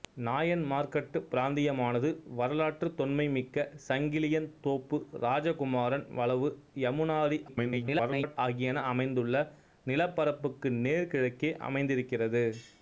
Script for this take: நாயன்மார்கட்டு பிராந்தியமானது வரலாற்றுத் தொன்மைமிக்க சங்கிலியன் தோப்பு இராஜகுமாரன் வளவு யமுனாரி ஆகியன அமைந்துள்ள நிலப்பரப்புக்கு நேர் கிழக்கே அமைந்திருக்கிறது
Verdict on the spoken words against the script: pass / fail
fail